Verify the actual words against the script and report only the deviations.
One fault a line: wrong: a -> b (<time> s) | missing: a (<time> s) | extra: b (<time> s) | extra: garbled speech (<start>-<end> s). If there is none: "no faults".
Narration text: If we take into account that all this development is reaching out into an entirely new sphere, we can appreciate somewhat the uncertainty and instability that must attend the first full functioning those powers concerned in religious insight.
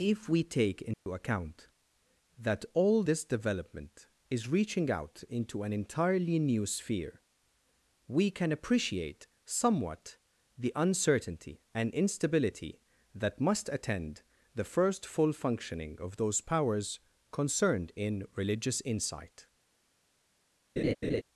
extra: of (16.0 s)